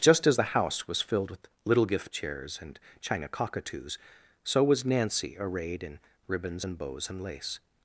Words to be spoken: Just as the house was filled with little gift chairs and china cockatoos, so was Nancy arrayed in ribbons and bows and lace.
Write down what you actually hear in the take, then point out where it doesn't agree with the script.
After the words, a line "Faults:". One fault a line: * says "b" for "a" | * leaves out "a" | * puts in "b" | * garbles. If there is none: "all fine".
Just as the house was filled with little gift chairs and china cockatoos, so was Nancy arrayed in ribbons and bows and lace.
Faults:
all fine